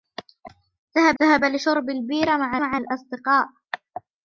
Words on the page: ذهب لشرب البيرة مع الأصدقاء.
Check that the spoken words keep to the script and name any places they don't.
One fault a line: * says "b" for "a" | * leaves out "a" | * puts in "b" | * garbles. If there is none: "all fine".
* puts in "ذهب"
* puts in "مع"